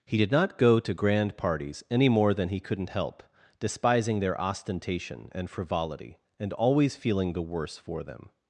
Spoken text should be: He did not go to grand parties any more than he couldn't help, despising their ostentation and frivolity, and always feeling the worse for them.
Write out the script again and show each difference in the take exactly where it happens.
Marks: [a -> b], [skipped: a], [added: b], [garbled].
He did not go to grand parties any more than he couldn't help, despising their ostentation and frivolity, and always feeling the worse for them.